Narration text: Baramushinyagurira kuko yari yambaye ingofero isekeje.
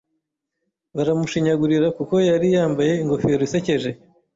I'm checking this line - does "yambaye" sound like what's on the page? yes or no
yes